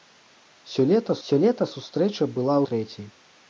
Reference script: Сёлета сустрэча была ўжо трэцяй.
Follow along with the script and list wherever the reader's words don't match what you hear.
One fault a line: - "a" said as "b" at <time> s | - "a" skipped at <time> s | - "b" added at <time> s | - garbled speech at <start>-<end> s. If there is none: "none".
- "сёлета" added at 1.3 s
- "ўжо" skipped at 2.6 s